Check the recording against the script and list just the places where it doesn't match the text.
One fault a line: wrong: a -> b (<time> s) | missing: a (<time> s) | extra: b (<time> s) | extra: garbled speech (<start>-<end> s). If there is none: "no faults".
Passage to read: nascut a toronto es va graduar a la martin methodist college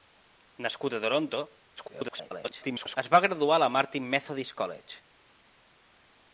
extra: garbled speech (1.8-3.0 s)